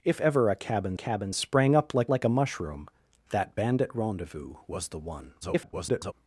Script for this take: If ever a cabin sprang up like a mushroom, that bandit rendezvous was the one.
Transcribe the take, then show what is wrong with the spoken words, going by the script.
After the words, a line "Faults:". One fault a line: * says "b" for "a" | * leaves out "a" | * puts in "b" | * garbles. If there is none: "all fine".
If ever a cabin cabin sprang up like like a mushroom, that bandit rendezvous was the one. [garbled]
Faults:
* puts in "cabin"
* puts in "like"
* garbles